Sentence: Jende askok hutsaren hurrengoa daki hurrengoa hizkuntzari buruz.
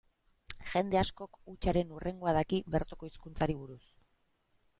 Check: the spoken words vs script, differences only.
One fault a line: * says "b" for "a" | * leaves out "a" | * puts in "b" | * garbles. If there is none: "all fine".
* says "bertoko" for "hurrengoa"